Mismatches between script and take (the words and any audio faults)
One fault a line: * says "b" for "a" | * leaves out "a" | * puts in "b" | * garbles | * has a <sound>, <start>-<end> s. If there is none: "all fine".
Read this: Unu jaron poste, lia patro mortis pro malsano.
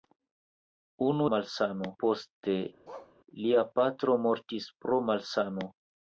* says "malsano" for "jaron"
* has a bark, 2.8-3.1 s